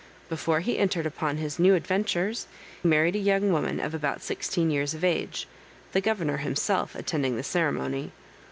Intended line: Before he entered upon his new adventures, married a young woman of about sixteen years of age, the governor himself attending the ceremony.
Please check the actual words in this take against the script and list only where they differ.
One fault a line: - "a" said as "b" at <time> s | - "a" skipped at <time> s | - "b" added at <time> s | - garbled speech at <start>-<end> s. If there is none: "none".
none